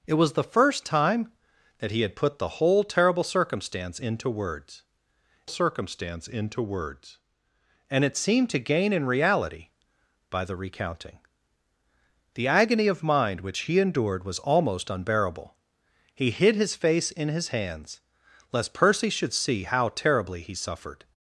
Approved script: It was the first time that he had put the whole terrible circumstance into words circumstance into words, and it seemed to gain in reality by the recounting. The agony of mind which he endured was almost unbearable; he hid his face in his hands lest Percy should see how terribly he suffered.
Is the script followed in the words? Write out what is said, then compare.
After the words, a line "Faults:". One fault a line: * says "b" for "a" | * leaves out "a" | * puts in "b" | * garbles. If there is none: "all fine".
It was the first time that he had put the whole terrible circumstance into words circumstance into words, and it seemed to gain in reality by the recounting. The agony of mind which he endured was almost unbearable; he hid his face in his hands lest Percy should see how terribly he suffered.
Faults:
all fine